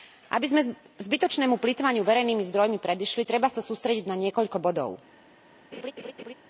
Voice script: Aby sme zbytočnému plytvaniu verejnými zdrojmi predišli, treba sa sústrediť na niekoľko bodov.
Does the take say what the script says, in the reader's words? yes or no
yes